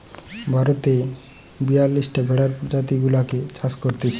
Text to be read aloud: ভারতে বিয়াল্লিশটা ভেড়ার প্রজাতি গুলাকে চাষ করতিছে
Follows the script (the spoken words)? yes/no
yes